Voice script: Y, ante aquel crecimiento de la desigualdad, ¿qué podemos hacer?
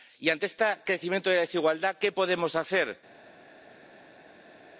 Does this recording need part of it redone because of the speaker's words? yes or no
yes